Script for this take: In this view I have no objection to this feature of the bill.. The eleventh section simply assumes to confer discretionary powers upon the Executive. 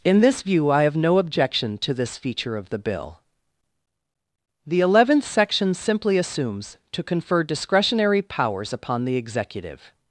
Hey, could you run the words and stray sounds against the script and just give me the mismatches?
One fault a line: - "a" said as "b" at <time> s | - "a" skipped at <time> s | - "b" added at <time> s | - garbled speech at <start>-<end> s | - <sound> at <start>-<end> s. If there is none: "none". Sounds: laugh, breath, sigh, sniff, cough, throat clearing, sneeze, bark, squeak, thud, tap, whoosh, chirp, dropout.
none